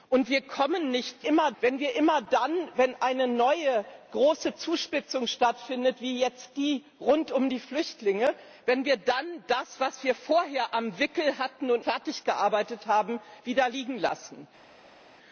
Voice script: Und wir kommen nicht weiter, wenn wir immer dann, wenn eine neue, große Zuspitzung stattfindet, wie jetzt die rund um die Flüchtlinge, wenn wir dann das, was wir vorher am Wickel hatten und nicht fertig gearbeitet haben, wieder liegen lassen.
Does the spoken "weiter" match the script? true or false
false